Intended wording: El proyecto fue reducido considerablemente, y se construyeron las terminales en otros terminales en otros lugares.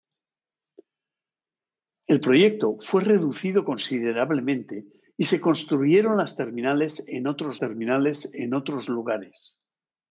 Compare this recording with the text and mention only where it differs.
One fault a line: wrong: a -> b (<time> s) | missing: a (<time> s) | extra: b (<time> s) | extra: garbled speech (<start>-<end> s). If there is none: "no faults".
no faults